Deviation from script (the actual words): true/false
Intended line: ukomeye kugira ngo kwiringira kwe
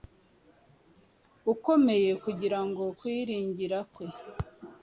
false